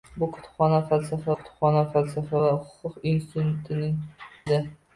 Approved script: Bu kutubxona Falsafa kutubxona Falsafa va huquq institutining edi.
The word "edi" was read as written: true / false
true